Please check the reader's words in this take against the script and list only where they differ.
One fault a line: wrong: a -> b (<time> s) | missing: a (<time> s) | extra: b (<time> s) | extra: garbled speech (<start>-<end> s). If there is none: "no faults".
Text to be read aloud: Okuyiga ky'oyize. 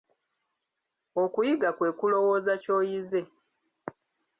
extra: kwe kulowooza (1.8 s)